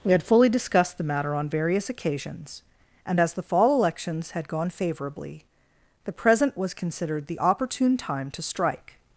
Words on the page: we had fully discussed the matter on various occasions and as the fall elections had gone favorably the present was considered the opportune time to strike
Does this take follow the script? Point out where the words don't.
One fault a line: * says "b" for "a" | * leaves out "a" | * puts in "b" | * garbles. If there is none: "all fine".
all fine